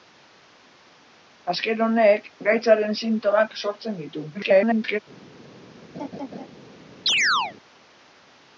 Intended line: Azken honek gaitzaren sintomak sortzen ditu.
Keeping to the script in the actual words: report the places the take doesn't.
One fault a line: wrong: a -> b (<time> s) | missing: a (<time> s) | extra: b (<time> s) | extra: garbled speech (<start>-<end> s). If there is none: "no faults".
extra: garbled speech (4.3-5.0 s)